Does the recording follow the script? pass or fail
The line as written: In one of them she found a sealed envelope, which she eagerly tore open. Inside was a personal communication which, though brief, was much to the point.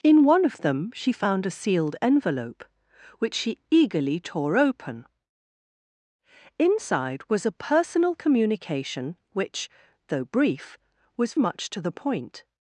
pass